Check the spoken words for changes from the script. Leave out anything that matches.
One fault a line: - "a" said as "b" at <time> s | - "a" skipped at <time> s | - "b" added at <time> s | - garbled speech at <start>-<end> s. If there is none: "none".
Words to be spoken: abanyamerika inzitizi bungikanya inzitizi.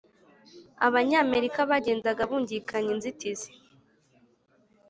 - "inzitizi" said as "bagendaga" at 1.7 s